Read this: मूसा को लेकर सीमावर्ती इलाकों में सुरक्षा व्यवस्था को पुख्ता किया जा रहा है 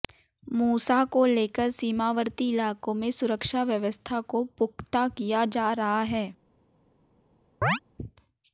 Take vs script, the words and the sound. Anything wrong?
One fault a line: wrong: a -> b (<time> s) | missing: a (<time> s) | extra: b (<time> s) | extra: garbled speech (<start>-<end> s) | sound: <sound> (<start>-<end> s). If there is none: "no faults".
sound: chirp (7.6-7.8 s)